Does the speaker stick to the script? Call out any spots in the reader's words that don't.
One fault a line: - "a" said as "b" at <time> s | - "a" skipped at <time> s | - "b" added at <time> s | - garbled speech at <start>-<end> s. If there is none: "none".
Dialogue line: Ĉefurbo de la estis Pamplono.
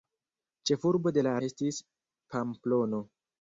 none